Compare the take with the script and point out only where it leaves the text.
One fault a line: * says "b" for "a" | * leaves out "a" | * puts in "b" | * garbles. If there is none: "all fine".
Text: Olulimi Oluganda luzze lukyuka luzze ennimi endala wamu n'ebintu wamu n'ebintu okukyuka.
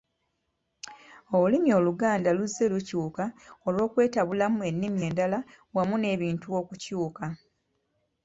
* says "olw'okwetabulamu" for "luzze"
* leaves out "wamu n'ebintu"